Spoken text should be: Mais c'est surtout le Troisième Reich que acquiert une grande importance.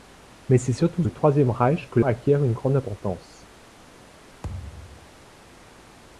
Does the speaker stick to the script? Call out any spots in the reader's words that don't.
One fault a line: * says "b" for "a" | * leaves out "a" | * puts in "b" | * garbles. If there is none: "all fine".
all fine